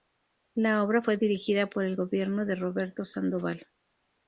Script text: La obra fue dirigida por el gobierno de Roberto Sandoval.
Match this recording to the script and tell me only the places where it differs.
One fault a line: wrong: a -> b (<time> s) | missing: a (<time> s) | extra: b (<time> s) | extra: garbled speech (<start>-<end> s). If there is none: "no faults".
no faults